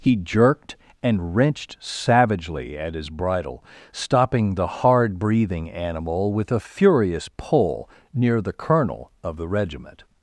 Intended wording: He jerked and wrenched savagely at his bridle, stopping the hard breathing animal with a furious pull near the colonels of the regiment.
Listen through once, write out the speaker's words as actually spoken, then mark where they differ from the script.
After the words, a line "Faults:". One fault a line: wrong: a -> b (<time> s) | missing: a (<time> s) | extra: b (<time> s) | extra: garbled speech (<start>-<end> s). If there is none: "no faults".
He jerked and wrenched savagely at his bridle, stopping the hard breathing animal with a furious pull near the colonel of the regiment.
Faults:
wrong: colonels -> colonel (8.5 s)